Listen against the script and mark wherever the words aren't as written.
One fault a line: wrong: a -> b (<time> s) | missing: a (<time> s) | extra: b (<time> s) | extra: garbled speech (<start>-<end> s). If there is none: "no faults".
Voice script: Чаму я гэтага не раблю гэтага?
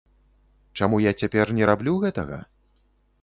wrong: гэтага -> цяпер (1.2 s)